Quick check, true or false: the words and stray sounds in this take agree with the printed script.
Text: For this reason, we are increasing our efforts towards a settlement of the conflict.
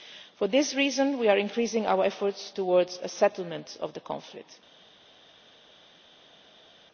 true